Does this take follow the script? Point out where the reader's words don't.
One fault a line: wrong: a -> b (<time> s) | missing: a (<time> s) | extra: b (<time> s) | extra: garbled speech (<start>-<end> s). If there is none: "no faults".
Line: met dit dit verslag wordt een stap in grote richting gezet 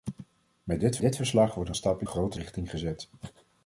no faults